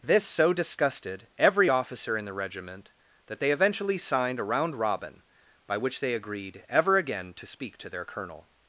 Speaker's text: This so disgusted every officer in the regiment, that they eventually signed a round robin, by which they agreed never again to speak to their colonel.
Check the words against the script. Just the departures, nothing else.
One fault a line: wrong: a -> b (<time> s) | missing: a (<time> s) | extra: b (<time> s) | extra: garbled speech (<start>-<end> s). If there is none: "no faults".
wrong: never -> ever (6.7 s)